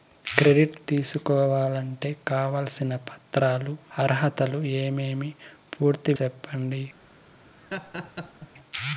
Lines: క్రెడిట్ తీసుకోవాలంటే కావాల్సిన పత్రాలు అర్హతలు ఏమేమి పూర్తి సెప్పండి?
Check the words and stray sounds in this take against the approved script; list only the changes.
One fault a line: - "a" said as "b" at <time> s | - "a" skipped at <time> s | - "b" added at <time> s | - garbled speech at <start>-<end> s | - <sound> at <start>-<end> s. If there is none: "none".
- laugh at 7.6-8.5 s